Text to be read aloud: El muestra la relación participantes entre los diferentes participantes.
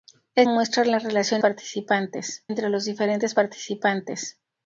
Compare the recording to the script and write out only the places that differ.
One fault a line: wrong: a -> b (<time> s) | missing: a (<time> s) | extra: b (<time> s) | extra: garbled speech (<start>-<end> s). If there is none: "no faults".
no faults